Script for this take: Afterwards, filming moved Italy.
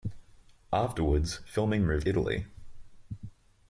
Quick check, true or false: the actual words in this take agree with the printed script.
true